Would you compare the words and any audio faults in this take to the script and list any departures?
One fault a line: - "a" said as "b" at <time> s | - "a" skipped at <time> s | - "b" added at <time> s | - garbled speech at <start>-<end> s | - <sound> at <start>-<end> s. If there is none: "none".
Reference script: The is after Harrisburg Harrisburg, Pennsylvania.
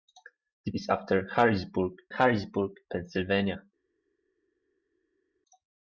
none